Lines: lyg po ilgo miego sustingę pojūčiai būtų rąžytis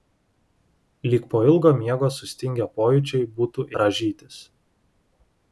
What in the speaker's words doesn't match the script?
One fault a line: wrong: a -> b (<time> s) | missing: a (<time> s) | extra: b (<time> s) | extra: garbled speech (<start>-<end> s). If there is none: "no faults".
no faults